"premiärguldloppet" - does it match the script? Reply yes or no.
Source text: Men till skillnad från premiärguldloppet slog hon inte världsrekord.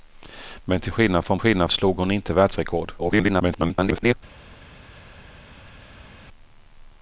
no